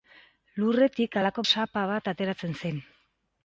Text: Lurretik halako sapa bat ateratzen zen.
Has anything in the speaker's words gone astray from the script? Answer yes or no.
no